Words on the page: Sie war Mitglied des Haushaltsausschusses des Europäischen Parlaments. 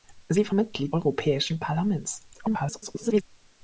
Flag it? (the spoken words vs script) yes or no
yes